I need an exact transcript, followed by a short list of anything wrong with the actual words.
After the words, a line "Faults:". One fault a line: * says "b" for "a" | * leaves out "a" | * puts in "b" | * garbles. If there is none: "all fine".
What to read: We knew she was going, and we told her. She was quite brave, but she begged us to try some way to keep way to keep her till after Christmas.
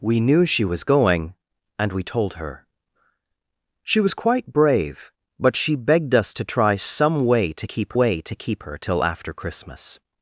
We knew she was going, and we told her. She was quite brave, but she begged us to try some way to keep way to keep her till after Christmas.
Faults:
all fine